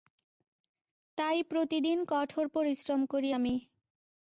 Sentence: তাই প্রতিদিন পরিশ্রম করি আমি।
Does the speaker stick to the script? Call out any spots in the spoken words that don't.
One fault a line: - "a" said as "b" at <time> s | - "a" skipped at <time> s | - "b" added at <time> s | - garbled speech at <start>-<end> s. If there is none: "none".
- "কঠোর" added at 2.1 s